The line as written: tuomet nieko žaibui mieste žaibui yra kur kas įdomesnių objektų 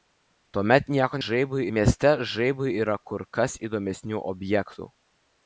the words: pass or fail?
pass